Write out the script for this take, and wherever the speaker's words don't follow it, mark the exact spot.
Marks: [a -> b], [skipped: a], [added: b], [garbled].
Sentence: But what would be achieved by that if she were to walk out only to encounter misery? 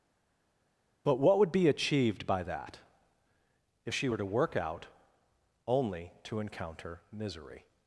But what would be achieved by that if she were to [walk -> work] out only to encounter misery?